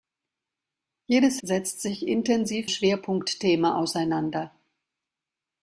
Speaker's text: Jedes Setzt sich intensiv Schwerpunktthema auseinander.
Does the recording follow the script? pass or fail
pass